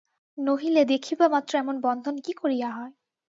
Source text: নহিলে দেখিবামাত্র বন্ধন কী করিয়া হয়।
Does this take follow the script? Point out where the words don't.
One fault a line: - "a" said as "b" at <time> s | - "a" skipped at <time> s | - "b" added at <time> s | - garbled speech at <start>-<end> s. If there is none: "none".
- "এমন" added at 1.6 s